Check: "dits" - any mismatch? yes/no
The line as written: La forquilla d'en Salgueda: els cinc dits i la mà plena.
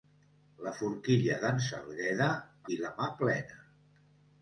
yes